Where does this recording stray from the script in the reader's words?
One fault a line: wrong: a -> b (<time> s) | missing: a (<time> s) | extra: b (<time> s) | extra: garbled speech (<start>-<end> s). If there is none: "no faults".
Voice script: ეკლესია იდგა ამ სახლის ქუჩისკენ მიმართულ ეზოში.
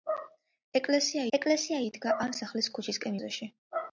extra: ეკლესია (1.4 s)
missing: მიმართულ (3.2 s)